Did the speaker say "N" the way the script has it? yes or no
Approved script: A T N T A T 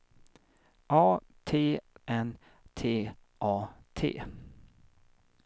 yes